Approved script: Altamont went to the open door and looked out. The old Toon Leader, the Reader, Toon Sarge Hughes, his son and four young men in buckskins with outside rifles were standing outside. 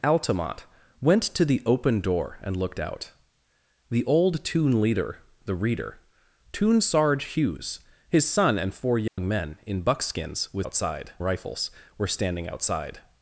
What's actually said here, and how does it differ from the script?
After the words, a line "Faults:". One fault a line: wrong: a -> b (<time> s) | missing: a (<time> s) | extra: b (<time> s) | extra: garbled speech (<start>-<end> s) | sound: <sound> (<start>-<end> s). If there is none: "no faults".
Altamont went to the open door and looked out. The old Toon Leader, the Reader, Toon Sarge Hughes, his son and four young men in buckskins with outside rifles were standing outside.
Faults:
sound: dropout (9.1-9.2 s)